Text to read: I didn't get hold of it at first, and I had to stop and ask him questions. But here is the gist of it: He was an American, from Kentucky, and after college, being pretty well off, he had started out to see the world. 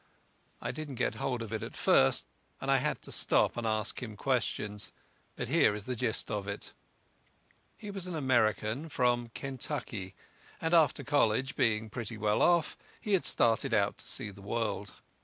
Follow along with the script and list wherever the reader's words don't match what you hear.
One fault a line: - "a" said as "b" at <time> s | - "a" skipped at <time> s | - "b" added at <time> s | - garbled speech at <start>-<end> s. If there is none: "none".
none